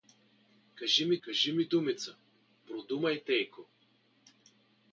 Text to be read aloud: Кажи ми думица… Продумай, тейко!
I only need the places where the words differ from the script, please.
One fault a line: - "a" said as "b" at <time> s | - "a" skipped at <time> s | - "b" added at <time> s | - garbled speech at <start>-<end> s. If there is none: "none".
- "кажи ми" added at 1.2 s